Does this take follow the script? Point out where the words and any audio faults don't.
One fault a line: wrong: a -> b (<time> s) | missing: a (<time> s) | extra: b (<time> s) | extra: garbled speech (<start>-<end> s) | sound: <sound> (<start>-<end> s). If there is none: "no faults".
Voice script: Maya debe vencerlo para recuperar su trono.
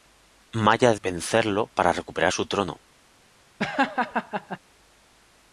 missing: debe (0.9 s)
sound: laugh (3.6-4.6 s)